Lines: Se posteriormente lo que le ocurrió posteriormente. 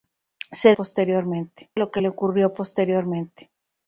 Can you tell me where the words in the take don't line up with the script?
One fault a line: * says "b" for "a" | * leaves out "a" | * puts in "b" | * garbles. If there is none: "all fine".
all fine